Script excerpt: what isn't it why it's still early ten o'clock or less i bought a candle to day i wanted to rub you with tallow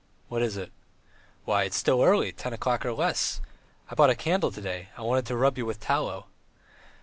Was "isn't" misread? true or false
true